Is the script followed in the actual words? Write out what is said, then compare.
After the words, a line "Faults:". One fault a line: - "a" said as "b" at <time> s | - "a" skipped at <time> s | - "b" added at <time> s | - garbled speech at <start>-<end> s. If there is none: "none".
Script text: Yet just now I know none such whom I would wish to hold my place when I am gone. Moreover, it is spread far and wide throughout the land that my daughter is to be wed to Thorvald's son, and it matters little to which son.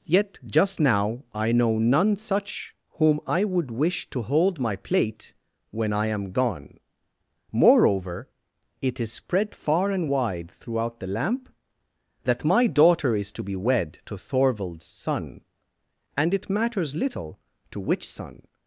Yet just now I know none such whom I would wish to hold my plate when I am gone. Moreover, it is spread far and wide throughout the lamp that my daughter is to be wed to Thorvald's son, and it matters little to which son.
Faults:
- "place" said as "plate" at 4.8 s
- "land" said as "lamp" at 11.1 s